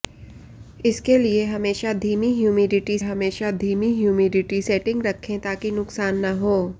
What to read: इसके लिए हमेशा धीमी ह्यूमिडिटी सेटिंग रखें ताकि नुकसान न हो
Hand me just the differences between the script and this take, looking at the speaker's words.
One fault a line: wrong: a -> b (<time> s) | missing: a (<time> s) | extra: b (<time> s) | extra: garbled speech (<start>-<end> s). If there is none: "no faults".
extra: हमेशा धीमी ह्यूमिडिटी (3.0 s)